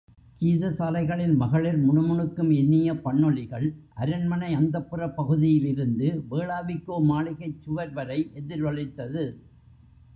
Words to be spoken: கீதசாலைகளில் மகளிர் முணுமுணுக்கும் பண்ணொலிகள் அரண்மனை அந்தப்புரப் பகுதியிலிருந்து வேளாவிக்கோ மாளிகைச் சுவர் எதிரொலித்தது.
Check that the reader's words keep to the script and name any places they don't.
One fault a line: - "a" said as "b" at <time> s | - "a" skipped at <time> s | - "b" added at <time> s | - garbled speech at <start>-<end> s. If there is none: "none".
- "இனிய" added at 2.5 s
- "வரை" added at 7.9 s